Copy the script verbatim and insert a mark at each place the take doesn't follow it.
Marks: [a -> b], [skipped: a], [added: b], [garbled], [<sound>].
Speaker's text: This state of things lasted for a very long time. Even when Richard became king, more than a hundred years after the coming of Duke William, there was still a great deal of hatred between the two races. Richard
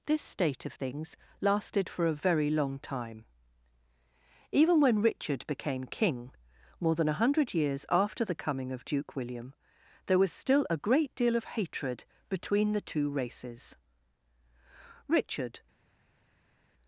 This state of things lasted for a very long time. Even when Richard became king, more than a hundred years after the coming of Duke William, there was still a great deal of hatred between the two races. Richard